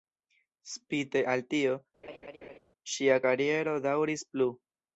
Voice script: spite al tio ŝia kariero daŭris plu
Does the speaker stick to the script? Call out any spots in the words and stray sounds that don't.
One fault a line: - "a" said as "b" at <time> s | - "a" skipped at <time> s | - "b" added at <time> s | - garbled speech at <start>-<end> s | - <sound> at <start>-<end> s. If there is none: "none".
- laugh at 2.0-2.6 s